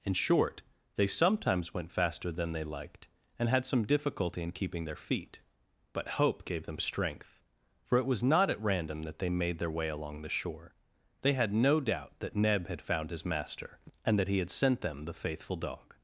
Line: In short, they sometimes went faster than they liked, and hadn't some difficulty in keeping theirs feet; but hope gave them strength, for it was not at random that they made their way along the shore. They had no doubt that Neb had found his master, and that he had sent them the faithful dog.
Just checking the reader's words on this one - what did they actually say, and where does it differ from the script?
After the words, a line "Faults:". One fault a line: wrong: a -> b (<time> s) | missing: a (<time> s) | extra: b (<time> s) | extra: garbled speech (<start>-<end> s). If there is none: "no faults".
In short, they sometimes went faster than they liked, and had some difficulty in keeping their feet; but hope gave them strength, for it was not at random that they made their way along the shore. They had no doubt that Neb had found his master, and that he had sent them the faithful dog.
Faults:
wrong: hadn't -> had (3.5 s)
wrong: theirs -> their (4.8 s)